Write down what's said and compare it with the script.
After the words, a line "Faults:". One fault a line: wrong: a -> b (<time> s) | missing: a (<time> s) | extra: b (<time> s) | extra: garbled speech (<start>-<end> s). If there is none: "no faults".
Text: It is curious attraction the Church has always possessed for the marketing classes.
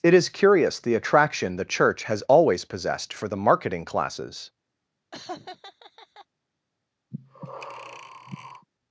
It is curious the attraction the Church has always possessed for the marketing classes.
Faults:
extra: the (0.8 s)